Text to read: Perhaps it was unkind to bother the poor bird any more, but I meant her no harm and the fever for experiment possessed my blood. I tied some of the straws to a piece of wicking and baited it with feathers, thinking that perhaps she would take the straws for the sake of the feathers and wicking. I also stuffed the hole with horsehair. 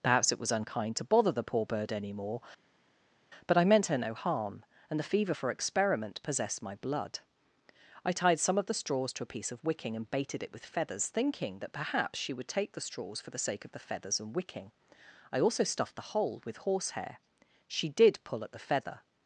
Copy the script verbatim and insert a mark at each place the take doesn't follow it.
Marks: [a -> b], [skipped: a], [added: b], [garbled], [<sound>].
Perhaps it was unkind to bother the poor bird any more, but I meant her no harm and the fever for experiment possessed my blood. I tied some of the straws to a piece of wicking and baited it with feathers, thinking that perhaps she would take the straws for the sake of the feathers and wicking. I also stuffed the hole with horsehair. [added: She did pull at the feather]